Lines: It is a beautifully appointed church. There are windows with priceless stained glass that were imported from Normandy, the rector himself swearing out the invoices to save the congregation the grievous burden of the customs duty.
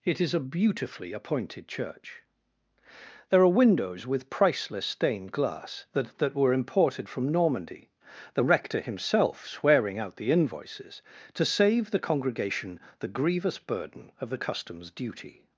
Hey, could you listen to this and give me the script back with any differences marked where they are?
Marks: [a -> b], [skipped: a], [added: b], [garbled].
It is a beautifully appointed church. There are windows with priceless stained glass that [added: that] were imported from Normandy, the rector himself swearing out the invoices to save the congregation the grievous burden of the customs duty.